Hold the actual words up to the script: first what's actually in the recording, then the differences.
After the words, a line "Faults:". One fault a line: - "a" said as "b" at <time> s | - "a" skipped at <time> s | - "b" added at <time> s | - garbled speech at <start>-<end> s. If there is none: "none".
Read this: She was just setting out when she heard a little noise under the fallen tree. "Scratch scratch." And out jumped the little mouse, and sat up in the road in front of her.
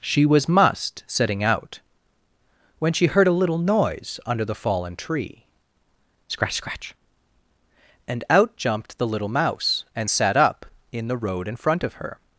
She was must setting out when she heard a little noise under the fallen tree. "Scratch scratch." And out jumped the little mouse, and sat up in the road in front of her.
Faults:
- "just" said as "must" at 0.5 s